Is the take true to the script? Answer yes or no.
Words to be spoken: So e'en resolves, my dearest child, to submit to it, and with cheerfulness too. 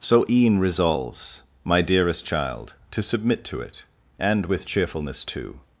yes